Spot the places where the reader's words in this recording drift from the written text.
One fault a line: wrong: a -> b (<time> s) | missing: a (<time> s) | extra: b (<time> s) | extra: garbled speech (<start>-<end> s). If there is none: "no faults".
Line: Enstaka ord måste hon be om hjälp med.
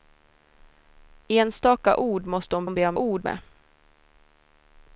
extra: hon (2.6 s)
wrong: hjälp -> ord (3.0 s)